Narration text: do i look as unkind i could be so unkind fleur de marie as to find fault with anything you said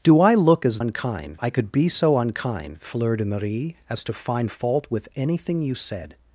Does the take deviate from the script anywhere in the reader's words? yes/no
no